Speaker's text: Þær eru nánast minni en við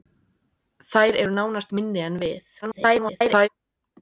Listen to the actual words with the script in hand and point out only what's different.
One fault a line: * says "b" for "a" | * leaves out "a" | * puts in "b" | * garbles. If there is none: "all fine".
* garbles